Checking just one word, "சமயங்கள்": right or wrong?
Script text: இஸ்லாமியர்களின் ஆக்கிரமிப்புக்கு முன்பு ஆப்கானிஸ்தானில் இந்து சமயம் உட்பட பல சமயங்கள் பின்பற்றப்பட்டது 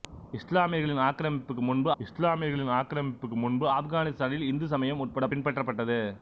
wrong